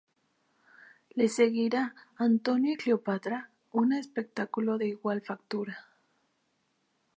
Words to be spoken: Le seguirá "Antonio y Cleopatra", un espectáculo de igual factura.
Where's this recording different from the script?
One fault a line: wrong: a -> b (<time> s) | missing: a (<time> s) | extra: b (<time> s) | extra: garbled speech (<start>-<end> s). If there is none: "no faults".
no faults